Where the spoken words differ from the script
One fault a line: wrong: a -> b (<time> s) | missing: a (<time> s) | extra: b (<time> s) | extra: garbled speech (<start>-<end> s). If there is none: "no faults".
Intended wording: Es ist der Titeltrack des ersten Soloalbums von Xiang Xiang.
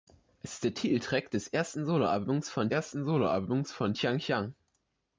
extra: ersten Soloalbums von (2.6 s)